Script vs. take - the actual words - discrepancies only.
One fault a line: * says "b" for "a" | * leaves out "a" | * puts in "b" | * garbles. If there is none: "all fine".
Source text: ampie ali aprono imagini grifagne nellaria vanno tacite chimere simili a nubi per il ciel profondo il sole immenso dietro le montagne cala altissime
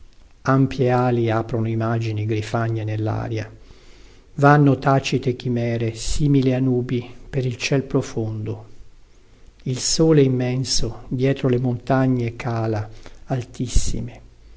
all fine